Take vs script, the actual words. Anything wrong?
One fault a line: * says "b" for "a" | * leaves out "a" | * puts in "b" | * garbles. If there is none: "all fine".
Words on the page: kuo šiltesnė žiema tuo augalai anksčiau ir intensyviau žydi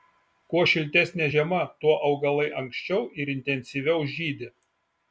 all fine